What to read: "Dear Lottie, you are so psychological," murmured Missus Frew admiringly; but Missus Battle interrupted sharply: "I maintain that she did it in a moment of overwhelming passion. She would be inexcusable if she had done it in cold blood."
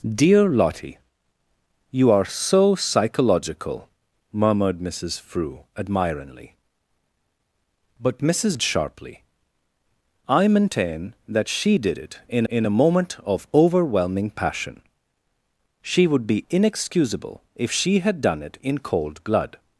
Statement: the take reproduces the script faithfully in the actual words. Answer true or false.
false